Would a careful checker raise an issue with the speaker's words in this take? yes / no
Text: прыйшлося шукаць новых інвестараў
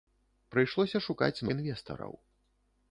yes